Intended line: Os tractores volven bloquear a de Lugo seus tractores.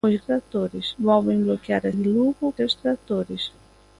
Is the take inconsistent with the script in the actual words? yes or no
no